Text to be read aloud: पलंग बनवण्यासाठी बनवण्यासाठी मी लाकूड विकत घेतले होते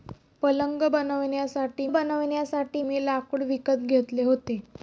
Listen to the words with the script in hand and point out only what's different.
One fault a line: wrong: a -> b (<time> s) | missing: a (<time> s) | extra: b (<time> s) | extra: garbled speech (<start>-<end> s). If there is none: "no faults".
no faults